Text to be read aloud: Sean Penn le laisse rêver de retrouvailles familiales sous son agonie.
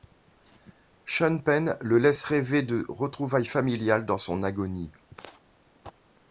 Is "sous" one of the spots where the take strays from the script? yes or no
yes